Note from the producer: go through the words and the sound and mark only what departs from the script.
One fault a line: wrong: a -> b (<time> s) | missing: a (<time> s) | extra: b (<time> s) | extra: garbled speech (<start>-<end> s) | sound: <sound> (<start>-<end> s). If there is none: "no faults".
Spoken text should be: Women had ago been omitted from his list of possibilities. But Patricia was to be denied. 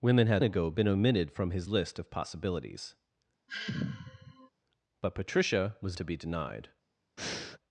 sound: sigh (3.5-4.5 s)
sound: breath (7.2-7.6 s)